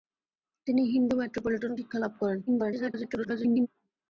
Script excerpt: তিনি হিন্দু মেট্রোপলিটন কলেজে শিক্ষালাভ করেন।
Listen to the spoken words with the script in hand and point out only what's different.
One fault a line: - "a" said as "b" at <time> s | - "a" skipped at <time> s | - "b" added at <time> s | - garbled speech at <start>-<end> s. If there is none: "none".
- "কলেজে" skipped at 1.7 s
- garbled speech at 2.5-3.7 s